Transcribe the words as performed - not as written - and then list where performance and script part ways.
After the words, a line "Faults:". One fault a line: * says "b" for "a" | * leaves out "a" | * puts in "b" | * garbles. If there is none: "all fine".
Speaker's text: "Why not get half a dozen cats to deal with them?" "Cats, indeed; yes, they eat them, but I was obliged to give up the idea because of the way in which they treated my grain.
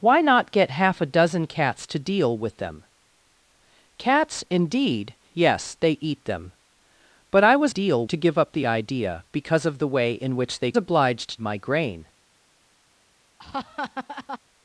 "Why not get half a dozen cats to deal with them?" "Cats, indeed; yes, they eat them, but I was deal to give up the idea because of the way in which they obliged my grain.
Faults:
* says "deal" for "obliged"
* says "obliged" for "treated"